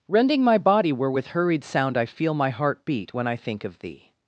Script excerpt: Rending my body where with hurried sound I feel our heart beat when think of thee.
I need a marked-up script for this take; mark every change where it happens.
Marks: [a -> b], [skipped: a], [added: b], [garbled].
Rending my body where with hurried sound I feel [our -> my] heart beat when [added: I] think of thee.